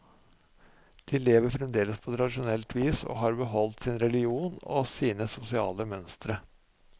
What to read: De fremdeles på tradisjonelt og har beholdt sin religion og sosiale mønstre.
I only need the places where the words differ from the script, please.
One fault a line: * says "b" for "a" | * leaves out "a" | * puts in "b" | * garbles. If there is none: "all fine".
* puts in "lever"
* puts in "vis"
* puts in "sine"